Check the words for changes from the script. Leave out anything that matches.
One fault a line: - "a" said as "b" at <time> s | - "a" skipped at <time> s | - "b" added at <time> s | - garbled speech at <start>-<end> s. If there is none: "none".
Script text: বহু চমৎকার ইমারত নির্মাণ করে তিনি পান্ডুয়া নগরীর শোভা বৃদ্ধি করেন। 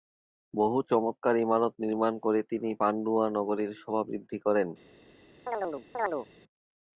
none